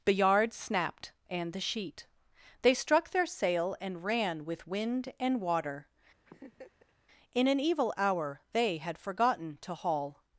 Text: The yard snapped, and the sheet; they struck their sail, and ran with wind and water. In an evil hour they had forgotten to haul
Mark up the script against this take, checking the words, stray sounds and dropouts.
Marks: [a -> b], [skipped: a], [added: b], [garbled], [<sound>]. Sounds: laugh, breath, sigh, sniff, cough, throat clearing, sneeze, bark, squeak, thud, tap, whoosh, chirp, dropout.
The yard snapped, and the sheet; they struck their sail, and ran with wind and water. [laugh] In an evil hour they had forgotten to haul